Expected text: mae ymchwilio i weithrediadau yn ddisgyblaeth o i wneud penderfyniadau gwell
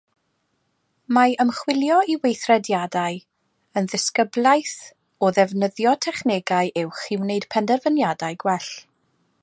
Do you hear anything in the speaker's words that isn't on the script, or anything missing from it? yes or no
yes